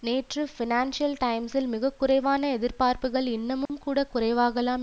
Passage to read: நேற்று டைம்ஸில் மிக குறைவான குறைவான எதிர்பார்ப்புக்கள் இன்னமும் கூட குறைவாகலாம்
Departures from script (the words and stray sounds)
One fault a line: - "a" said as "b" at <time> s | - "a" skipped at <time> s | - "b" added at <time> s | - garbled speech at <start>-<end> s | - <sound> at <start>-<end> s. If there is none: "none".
- "பைனான்சியல்" added at 0.5 s
- "குறைவான" skipped at 2.5 s
- dropout at 3.7-3.7 s